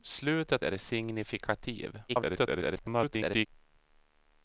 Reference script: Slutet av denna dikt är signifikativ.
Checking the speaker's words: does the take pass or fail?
fail